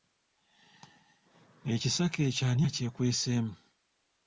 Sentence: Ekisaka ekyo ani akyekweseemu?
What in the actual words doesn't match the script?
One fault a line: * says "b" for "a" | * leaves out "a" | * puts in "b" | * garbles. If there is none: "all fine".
all fine